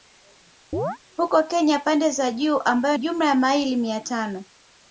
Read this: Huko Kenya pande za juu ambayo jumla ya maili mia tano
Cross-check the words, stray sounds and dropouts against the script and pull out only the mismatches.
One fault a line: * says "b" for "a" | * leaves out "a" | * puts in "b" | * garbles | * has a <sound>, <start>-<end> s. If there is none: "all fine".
* has a chirp, 0.7-1.0 s